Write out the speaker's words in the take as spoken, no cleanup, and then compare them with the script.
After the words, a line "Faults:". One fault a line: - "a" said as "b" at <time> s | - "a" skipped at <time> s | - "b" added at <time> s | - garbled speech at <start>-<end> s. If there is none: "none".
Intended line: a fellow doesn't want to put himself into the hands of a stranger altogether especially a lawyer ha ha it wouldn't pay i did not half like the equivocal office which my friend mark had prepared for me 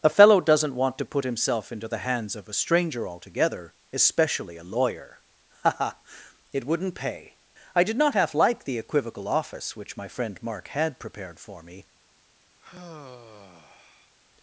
a fellow doesn't want to put himself into the hands of a stranger altogether especially a lawyer ha ha it wouldn't pay i did not half like the equivocal office which my friend mark had prepared for me
Faults:
none